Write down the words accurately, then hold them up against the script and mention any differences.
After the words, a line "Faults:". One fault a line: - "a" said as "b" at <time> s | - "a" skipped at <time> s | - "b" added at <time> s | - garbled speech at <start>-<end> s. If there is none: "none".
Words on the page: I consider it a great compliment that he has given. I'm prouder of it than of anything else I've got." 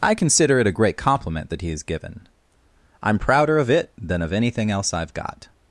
I consider it a great compliment that he has given. I'm prouder of it than of anything else I've got."
Faults:
none